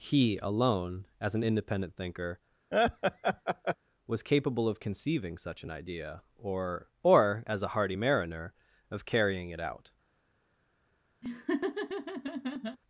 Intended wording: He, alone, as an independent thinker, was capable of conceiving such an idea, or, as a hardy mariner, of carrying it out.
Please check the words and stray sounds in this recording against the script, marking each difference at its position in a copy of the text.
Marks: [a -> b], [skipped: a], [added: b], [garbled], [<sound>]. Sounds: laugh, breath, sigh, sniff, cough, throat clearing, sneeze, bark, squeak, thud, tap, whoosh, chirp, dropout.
He, alone, as an independent thinker, [laugh] was capable of conceiving such an idea, or, [added: or] as a hardy mariner, of carrying it out. [laugh]